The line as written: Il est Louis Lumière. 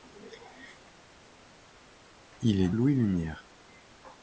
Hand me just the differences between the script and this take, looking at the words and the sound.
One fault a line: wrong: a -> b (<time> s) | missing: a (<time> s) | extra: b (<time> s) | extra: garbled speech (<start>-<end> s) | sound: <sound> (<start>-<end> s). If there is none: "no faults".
no faults